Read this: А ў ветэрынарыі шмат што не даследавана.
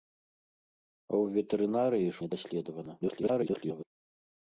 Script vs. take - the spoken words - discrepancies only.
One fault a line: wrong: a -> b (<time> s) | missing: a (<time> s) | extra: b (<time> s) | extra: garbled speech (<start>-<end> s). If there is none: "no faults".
missing: шмат што (2.1 s)
extra: garbled speech (3.0-3.8 s)